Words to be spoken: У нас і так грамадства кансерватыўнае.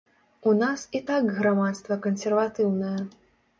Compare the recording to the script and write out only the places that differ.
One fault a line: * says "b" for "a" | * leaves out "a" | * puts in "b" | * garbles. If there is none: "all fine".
all fine